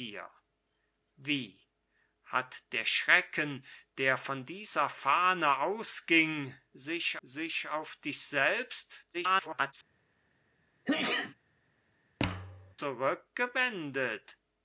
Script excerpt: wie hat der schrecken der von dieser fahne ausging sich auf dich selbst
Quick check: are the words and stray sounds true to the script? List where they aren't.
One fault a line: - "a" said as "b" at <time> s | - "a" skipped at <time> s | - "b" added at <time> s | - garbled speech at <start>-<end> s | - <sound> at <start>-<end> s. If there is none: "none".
- "sich" added at 7.2 s
- garbled speech at 9.1-9.7 s
- sneeze at 10.9-11.4 s
- thud at 12.2-12.8 s